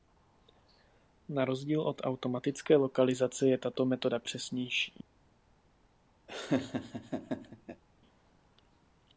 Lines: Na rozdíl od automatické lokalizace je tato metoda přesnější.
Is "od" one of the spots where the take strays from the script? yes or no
no